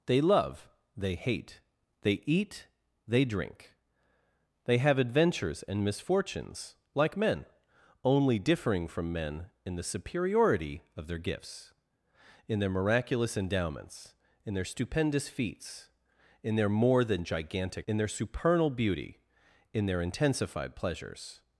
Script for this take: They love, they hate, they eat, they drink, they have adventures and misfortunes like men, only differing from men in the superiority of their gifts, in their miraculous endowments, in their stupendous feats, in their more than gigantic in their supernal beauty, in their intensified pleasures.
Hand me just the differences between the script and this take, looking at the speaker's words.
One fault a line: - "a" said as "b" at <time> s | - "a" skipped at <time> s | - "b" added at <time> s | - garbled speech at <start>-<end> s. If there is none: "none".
none